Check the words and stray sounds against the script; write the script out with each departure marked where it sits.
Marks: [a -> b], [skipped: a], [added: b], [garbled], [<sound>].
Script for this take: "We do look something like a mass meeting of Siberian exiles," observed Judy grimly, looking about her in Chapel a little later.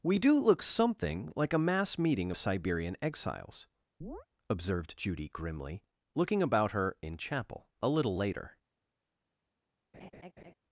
"We do look something like a mass meeting [skipped: of] Siberian exiles," [chirp] observed Judy grimly, looking about her in Chapel a little later. [laugh]